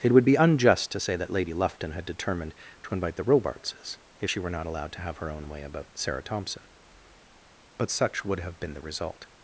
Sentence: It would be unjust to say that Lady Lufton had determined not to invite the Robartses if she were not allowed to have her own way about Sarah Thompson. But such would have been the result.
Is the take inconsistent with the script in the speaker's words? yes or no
yes